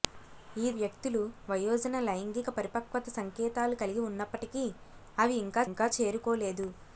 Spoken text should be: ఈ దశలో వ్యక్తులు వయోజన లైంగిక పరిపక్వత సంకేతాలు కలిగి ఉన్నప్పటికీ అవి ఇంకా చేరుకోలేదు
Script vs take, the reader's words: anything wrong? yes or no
yes